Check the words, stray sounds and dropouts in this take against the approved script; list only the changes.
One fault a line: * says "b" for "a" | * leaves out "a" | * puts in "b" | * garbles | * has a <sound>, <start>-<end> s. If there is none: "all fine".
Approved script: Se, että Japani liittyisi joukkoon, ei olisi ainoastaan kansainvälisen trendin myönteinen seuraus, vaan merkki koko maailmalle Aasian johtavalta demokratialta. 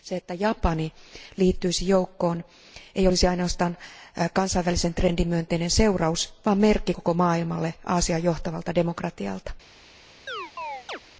* has a chirp, 10.3-11.0 s